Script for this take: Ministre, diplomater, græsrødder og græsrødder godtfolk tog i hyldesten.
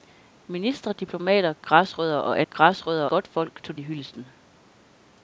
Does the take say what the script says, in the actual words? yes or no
yes